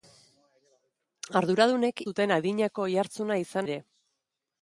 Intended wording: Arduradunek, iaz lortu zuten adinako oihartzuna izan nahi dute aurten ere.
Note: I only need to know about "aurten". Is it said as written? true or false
false